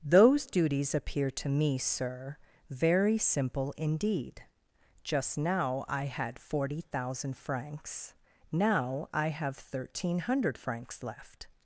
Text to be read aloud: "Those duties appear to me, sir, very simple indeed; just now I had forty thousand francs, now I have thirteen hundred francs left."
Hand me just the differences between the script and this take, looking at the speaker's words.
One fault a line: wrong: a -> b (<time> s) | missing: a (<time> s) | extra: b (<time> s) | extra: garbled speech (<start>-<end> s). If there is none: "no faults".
no faults